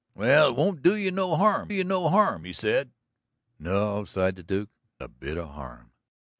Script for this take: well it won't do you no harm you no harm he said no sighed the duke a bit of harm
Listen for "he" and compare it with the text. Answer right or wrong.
right